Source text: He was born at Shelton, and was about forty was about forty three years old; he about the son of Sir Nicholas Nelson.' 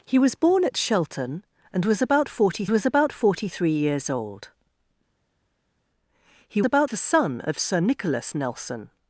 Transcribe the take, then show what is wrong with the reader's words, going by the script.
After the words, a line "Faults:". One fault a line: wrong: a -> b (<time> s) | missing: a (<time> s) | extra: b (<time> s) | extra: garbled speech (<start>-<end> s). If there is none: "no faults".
He was born at Shelton, and was about forty was about forty three years old; he about the son of Sir Nicholas Nelson.'
Faults:
no faults